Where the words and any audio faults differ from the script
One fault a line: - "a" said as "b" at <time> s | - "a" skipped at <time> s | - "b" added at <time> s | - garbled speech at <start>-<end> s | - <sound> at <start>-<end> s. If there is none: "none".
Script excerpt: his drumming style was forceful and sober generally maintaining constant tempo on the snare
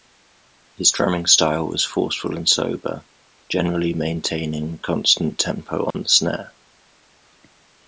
- dropout at 5.9-5.9 s